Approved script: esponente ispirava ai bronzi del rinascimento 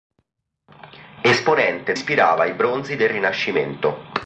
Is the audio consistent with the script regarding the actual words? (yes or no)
yes